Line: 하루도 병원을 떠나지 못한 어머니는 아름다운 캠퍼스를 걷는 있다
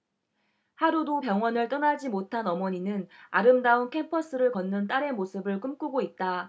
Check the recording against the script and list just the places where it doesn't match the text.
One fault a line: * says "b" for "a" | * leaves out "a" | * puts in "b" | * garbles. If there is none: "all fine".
* puts in "딸의 모습을 꿈꾸고"